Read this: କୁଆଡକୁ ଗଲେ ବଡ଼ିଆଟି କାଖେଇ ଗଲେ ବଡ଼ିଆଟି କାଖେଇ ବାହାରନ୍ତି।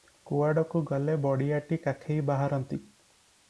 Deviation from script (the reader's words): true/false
true